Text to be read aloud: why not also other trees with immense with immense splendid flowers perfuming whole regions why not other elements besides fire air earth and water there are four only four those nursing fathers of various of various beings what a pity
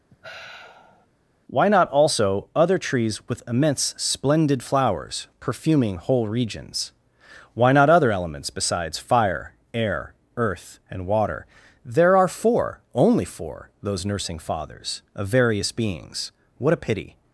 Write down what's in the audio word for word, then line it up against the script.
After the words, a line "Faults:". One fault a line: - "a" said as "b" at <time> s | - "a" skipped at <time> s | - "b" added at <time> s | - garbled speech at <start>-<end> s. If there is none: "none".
why not also other trees with immense splendid flowers perfuming whole regions why not other elements besides fire air earth and water there are four only four those nursing fathers of various beings what a pity
Faults:
- "with immense" skipped at 3.9 s
- "of various" skipped at 15.7 s